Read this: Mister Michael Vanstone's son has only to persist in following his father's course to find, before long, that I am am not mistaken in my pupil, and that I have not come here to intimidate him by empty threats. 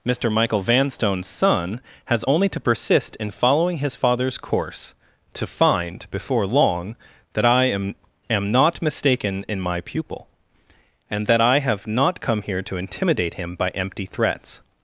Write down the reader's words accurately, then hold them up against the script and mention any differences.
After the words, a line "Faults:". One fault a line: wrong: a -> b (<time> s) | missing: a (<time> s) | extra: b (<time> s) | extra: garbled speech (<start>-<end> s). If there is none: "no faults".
Mister Michael Vanstone's son has only to persist in following his father's course to find, before long, that I am am not mistaken in my pupil, and that I have not come here to intimidate him by empty threats.
Faults:
no faults